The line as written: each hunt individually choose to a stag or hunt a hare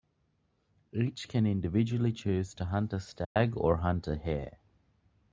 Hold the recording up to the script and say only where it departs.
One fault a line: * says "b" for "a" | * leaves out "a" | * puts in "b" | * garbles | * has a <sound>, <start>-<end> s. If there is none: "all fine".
* says "can" for "hunt"
* puts in "hunt"
* has a dropout, 3.2-3.4 s